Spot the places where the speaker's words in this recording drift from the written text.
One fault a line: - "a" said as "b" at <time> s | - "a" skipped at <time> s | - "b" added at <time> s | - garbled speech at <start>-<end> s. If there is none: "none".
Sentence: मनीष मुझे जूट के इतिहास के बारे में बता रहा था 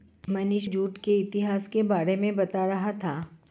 - "मुझे" skipped at 0.7 s